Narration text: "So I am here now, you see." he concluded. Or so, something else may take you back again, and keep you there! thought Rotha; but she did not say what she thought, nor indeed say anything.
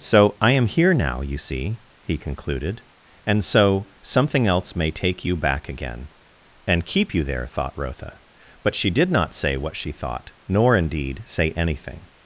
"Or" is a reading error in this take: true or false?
true